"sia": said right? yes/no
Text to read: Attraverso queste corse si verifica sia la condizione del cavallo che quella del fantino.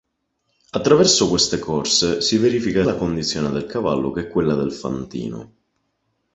no